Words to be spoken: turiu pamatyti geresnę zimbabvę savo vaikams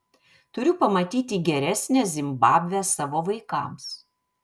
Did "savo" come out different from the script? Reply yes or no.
no